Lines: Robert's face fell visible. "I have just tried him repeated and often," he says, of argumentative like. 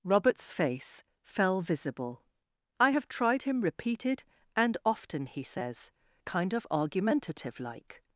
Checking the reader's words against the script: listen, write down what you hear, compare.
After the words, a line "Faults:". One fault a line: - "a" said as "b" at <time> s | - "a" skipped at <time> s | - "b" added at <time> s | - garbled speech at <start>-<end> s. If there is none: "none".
Robert's face fell visible. "I have tried him repeated and often," he says, kind of argumentative like.
Faults:
- "just" skipped at 3.1 s
- "kind" added at 6.2 s